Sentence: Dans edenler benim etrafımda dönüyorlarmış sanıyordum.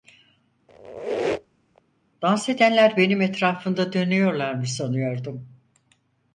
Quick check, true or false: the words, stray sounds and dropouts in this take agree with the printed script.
false